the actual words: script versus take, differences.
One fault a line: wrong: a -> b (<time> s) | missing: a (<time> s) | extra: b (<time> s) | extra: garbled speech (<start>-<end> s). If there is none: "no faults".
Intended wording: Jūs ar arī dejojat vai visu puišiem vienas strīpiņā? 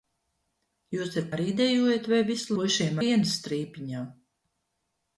no faults